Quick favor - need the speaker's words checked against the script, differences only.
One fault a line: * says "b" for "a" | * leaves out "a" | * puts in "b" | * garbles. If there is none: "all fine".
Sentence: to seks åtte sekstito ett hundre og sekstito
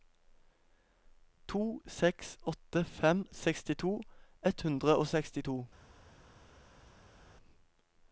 * puts in "fem"